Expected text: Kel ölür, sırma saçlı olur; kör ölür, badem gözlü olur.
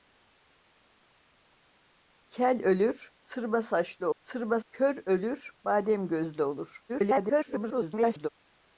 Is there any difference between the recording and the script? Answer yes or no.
yes